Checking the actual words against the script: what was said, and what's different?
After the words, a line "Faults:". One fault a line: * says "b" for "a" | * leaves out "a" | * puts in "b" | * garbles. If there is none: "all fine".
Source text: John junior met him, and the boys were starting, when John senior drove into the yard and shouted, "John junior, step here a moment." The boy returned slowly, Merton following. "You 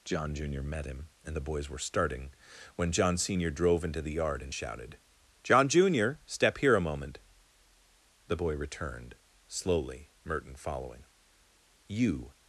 John junior met him, and the boys were starting, when John senior drove into the yard and shouted, "John junior, step here a moment." The boy returned slowly, Merton following. "You
Faults:
all fine